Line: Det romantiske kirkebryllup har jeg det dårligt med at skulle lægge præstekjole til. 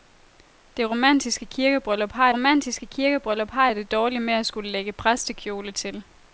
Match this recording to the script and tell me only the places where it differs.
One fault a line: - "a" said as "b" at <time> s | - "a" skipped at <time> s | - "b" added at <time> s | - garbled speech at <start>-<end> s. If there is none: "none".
- "romantiske kirkebryllup har" added at 2.3 s